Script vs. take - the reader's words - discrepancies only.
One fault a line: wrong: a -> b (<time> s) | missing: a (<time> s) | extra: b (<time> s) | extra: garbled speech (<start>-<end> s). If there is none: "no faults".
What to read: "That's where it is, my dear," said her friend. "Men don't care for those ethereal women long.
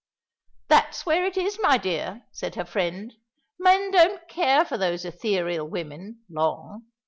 no faults